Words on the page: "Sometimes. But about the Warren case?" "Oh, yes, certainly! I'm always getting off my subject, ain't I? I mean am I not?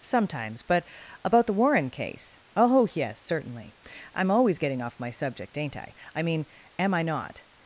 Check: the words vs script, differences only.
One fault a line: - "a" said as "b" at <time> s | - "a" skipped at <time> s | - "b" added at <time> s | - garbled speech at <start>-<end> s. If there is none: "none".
none